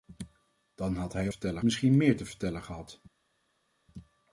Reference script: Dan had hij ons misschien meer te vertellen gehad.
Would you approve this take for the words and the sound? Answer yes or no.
no